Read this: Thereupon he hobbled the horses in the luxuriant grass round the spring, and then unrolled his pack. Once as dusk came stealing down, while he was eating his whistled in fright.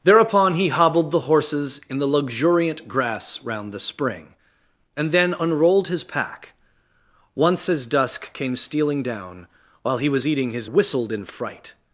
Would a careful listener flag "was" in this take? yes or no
no